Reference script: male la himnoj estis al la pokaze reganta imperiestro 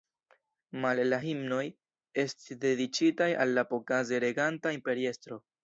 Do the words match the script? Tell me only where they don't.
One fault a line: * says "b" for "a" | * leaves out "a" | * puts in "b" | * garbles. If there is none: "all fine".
* puts in "dediĉitaj"